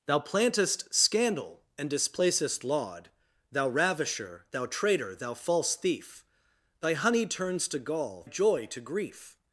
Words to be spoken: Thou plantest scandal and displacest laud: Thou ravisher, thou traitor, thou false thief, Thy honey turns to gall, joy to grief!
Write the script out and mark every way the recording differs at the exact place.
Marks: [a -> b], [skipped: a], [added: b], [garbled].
Thou plantest scandal and displacest laud: Thou ravisher, thou traitor, thou false thief, Thy honey turns to gall, joy to grief!